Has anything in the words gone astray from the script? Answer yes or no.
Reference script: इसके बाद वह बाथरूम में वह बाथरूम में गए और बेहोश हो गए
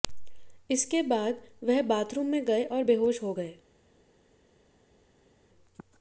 yes